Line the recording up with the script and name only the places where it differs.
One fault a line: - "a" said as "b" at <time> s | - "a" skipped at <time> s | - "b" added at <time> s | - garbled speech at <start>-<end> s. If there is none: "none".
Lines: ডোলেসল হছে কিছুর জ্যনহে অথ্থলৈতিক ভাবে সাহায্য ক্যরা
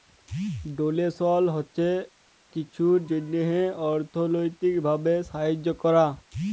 none